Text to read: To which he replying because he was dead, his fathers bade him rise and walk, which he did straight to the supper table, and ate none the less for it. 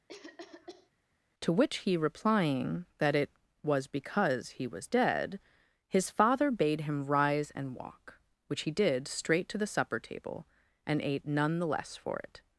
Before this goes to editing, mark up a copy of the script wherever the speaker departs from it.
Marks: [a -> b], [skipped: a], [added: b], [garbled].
To which he replying [added: that it was] because he was dead, his [fathers -> father] bade him rise and walk, which he did straight to the supper table, and ate none the less for it.